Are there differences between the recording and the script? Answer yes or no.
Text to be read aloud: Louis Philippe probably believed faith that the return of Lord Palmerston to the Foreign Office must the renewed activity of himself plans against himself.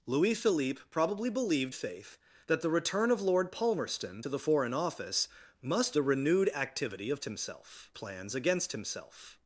no